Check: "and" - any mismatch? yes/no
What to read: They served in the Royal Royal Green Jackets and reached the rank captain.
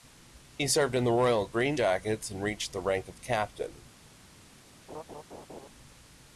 no